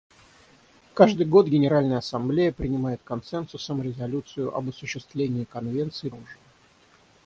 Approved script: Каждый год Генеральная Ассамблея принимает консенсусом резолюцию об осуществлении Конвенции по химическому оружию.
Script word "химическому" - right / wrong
wrong